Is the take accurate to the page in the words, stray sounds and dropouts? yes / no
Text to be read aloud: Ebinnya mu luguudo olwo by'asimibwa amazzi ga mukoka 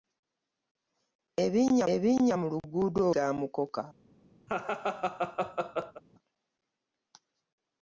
no